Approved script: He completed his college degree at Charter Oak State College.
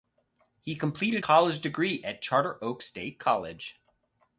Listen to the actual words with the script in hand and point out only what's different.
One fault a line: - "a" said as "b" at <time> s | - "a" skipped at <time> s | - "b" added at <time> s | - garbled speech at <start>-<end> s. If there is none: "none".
- "his" skipped at 1.2 s